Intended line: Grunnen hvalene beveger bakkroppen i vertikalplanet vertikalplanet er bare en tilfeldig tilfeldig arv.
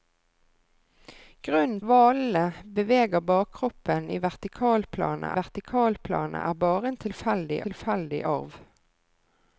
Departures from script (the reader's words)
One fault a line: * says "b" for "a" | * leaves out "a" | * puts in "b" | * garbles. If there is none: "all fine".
all fine